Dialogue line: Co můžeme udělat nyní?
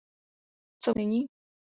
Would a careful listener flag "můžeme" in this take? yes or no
yes